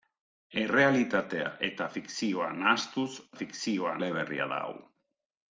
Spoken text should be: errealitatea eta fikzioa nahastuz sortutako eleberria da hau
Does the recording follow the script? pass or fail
fail